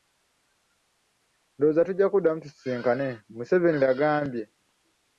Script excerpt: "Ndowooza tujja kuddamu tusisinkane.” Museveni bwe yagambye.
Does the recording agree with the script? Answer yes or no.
no